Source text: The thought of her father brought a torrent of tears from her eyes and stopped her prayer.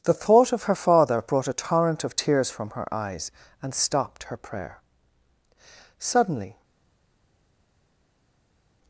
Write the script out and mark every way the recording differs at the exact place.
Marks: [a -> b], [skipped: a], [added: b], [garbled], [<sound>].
The thought of her father brought a torrent of tears from her eyes and stopped her prayer. [added: Suddenly]